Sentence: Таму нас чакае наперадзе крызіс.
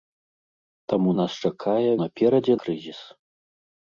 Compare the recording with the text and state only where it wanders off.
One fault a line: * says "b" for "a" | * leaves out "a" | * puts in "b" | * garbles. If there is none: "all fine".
all fine